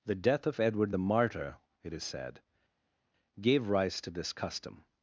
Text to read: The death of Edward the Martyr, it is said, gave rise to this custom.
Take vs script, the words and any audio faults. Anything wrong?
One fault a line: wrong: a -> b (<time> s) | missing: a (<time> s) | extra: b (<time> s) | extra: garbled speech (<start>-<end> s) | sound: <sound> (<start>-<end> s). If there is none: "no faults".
no faults